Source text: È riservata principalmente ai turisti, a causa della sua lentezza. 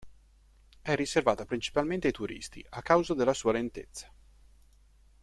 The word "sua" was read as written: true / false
true